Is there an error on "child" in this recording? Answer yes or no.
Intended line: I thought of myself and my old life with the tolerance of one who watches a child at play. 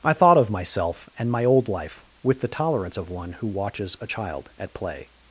no